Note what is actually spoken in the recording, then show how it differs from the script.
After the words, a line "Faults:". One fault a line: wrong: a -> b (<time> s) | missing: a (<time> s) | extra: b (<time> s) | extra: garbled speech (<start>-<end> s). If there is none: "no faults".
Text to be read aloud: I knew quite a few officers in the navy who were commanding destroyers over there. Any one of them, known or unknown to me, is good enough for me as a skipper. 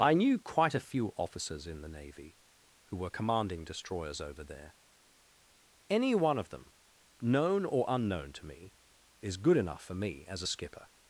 I knew quite a few officers in the navy who were commanding destroyers over there. Any one of them, known or unknown to me, is good enough for me as a skipper.
Faults:
no faults